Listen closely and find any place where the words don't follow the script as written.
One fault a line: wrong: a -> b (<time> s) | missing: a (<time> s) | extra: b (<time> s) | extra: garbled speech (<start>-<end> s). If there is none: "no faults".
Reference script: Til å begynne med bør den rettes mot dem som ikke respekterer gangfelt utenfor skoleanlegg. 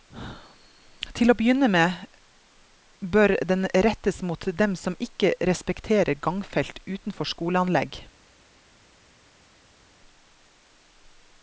no faults